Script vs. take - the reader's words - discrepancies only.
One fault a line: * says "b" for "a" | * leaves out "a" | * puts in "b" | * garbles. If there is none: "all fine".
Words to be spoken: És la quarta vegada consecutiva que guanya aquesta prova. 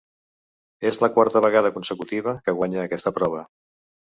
all fine